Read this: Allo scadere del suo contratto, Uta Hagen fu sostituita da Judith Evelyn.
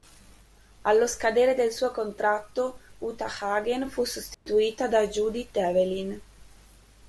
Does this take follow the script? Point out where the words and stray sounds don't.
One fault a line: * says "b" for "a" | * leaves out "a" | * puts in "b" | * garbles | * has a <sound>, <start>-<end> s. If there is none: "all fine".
* has a dropout, 4.3-4.5 s